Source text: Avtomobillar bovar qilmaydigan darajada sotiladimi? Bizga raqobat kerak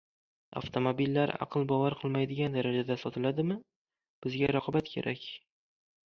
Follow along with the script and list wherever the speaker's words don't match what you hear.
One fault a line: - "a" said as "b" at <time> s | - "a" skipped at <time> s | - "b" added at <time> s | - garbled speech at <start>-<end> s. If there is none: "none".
- "aql" added at 1.4 s